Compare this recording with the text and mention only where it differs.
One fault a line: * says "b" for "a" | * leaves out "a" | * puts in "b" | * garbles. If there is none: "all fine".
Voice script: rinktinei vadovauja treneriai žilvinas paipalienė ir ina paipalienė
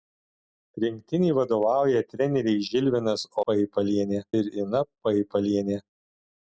all fine